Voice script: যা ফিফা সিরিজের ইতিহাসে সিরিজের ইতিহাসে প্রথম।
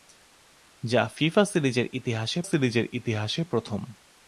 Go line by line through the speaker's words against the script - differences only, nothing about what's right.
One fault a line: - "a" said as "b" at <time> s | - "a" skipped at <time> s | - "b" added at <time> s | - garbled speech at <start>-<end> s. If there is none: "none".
none